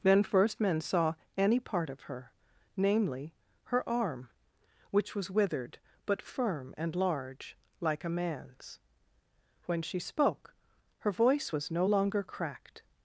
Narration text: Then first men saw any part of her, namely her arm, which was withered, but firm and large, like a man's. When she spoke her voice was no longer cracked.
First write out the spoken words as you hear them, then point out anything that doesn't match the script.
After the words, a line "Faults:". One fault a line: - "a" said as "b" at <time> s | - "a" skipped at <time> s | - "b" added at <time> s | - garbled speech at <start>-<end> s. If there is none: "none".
Then first men saw any part of her, namely her arm, which was withered, but firm and large, like a man's. When she spoke her voice was no longer cracked.
Faults:
none